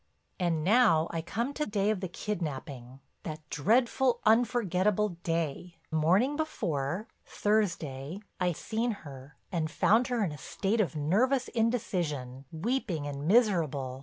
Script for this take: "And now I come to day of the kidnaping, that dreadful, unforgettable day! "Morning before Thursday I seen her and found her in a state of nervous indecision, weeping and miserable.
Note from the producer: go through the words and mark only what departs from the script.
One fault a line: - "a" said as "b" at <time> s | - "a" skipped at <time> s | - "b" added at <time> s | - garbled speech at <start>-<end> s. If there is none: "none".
none